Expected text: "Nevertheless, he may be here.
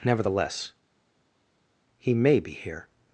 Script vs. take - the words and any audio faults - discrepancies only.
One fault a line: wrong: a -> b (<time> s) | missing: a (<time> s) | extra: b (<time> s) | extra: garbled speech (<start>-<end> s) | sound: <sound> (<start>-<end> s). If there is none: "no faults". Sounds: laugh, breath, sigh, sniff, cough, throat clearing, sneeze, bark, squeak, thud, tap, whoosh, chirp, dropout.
no faults